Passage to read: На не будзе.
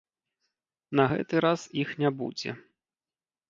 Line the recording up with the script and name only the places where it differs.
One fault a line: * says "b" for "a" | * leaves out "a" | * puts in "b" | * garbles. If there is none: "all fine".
* puts in "гэты раз іх"